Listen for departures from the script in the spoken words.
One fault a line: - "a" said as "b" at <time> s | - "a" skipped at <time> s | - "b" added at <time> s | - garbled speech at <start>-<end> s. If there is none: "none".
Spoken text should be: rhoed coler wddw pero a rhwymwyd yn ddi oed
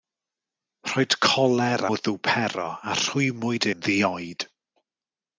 none